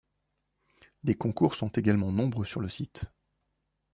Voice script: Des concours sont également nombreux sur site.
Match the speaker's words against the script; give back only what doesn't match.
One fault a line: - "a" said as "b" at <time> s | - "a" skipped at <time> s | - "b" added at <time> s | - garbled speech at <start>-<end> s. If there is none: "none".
- "le" added at 2.6 s